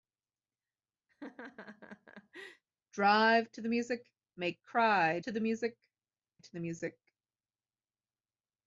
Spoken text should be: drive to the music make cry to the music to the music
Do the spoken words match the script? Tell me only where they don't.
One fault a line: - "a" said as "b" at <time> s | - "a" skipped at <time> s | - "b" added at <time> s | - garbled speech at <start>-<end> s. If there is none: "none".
none